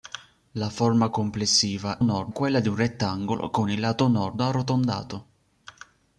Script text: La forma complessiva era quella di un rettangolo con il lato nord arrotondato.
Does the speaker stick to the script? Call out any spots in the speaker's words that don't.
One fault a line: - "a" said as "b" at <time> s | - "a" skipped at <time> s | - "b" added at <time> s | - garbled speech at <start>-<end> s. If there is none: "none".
- "era" said as "nord" at 2.0 s